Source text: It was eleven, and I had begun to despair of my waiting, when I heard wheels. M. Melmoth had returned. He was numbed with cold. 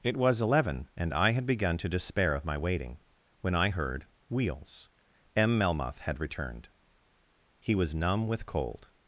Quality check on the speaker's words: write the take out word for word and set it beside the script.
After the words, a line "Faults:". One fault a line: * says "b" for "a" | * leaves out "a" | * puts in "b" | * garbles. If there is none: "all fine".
It was eleven, and I had begun to despair of my waiting, when I heard wheels. M. Melmoth had returned. He was numb with cold.
Faults:
* says "numb" for "numbed"